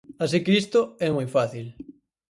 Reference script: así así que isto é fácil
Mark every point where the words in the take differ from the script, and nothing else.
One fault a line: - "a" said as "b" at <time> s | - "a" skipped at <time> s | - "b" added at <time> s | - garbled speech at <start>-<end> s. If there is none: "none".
- "así" skipped at 0.4 s
- "moi" added at 1.2 s